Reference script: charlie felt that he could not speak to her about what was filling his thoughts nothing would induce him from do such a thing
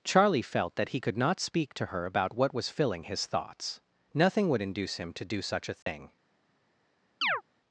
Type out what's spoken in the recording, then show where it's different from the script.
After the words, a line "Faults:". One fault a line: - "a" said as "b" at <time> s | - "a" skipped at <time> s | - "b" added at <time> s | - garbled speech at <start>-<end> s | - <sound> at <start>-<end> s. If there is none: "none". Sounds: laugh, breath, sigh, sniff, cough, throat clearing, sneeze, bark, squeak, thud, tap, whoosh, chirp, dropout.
charlie felt that he could not speak to her about what was filling his thoughts nothing would induce him to do such a thing
Faults:
- "from" said as "to" at 5.1 s
- dropout at 5.8-5.9 s
- chirp at 7.2-7.4 s